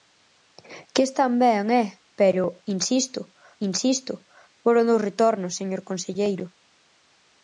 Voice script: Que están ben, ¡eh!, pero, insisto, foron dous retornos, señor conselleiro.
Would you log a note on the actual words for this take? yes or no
yes